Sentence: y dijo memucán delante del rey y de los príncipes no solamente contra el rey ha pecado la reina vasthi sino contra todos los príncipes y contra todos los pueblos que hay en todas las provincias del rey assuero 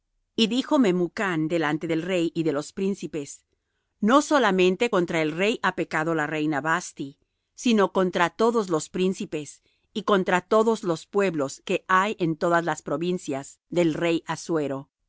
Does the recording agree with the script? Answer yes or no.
yes